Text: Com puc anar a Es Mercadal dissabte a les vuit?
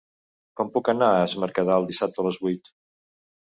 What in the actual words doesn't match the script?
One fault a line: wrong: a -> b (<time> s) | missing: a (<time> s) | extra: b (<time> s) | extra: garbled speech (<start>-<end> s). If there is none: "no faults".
no faults